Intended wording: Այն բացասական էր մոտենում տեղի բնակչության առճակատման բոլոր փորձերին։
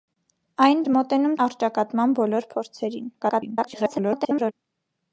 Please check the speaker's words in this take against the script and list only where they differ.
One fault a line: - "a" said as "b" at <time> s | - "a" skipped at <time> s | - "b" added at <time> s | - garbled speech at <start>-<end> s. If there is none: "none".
- "բացասական" skipped at 0.8 s
- "տեղի բնակչության" skipped at 1.4 s
- garbled speech at 3.2-4.5 s